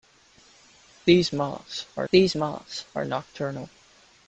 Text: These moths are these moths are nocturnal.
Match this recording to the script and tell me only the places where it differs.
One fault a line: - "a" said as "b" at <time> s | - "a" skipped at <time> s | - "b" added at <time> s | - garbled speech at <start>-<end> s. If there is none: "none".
none